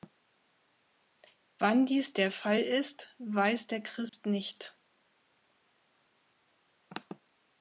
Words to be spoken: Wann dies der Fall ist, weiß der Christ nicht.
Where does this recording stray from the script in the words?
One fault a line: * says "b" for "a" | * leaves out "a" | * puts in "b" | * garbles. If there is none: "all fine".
all fine